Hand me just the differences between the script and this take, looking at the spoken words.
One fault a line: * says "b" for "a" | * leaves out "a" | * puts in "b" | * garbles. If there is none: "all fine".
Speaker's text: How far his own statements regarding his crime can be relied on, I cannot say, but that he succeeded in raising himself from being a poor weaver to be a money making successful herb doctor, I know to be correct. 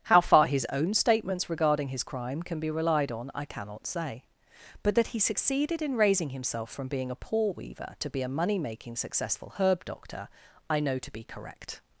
all fine